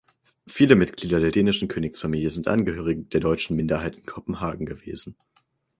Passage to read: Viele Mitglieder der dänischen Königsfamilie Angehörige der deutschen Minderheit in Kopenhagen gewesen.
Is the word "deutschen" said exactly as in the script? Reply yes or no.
yes